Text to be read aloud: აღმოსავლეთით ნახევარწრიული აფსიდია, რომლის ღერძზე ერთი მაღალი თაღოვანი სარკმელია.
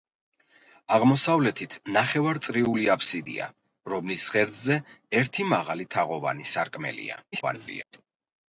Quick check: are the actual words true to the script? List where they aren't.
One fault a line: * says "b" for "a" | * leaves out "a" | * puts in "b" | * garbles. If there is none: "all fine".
* garbles